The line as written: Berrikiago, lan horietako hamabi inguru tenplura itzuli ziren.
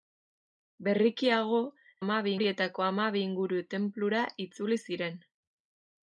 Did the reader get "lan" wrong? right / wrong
wrong